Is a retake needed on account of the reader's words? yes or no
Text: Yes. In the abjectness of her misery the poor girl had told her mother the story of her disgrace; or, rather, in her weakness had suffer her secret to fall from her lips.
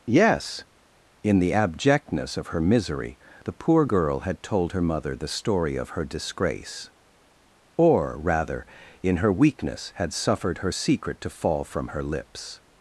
yes